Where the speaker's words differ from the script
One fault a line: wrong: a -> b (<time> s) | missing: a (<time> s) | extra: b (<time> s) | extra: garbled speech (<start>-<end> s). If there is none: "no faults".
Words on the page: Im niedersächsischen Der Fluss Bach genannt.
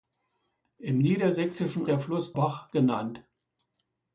no faults